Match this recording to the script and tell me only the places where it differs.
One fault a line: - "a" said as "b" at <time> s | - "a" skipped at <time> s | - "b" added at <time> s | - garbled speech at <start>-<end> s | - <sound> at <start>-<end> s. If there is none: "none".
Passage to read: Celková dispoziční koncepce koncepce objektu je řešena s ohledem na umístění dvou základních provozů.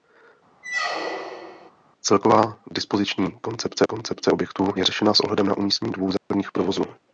- squeak at 0.6-1.7 s
- dropout at 6.2-6.3 s